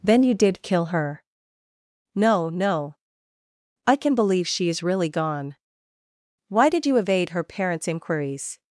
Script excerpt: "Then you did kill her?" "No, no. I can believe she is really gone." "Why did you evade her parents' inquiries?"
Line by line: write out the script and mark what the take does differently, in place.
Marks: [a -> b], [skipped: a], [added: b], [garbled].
"Then you did kill her?" "No, no. I can believe she is really gone." "Why did you evade her parents' inquiries?"